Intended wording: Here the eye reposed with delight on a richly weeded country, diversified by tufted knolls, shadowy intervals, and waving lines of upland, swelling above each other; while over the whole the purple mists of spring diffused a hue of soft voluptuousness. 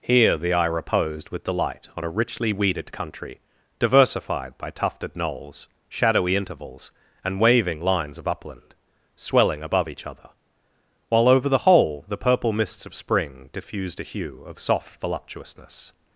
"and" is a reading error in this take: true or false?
false